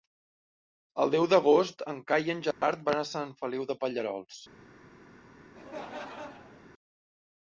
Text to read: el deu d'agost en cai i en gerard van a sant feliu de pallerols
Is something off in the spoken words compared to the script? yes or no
no